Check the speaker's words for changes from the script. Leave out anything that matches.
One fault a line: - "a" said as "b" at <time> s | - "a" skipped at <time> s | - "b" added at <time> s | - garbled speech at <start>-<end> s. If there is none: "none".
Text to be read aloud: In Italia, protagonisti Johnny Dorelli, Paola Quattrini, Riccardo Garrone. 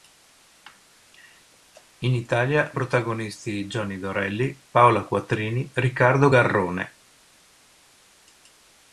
none